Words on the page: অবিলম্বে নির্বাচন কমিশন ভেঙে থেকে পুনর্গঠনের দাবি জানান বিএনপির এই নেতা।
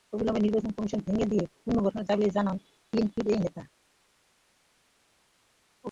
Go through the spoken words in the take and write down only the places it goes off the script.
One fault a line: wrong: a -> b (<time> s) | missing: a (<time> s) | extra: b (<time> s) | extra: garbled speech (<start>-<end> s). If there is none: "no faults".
wrong: থেকে -> দিয়ে (1.2 s)